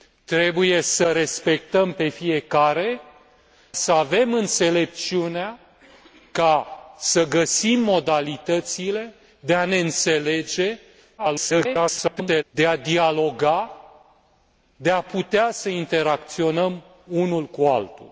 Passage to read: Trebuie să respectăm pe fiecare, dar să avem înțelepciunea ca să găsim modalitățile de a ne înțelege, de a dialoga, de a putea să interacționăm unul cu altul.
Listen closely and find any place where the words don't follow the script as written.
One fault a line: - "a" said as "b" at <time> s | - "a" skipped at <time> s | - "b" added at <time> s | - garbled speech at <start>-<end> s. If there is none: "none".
- "dar" skipped at 3.0 s
- garbled speech at 11.2-12.4 s